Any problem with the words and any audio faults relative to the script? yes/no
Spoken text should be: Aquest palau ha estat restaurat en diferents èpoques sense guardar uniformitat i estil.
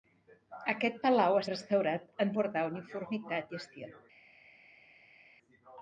yes